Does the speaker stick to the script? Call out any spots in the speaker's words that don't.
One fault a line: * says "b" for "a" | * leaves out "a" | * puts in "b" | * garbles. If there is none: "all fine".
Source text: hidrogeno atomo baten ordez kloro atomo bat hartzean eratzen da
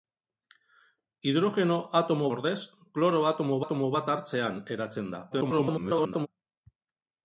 * leaves out "baten"
* puts in "atomo"
* garbles